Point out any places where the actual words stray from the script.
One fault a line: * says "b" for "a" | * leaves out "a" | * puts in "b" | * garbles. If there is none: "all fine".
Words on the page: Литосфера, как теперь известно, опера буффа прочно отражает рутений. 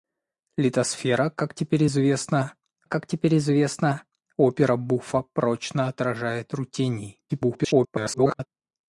* puts in "как теперь известно"
* garbles